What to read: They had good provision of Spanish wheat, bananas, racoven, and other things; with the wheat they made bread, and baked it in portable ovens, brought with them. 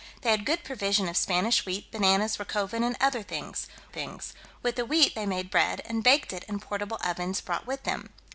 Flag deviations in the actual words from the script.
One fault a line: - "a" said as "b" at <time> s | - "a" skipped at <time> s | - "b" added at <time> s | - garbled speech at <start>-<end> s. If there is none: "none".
- "things" added at 3.9 s